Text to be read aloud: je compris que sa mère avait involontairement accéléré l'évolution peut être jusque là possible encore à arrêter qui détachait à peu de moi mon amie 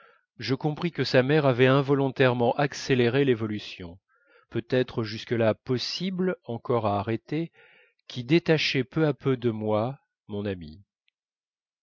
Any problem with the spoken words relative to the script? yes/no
yes